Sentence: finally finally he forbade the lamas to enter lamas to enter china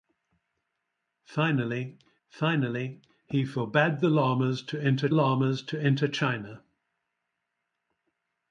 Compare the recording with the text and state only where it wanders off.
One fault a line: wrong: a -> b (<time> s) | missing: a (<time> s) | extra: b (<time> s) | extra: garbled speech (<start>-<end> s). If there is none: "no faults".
no faults